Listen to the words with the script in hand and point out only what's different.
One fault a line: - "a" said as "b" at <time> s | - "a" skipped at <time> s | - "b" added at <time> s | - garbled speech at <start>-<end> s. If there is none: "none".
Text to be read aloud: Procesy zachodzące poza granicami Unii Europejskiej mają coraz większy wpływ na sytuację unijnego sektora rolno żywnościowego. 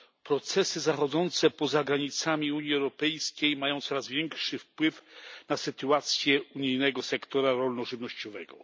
none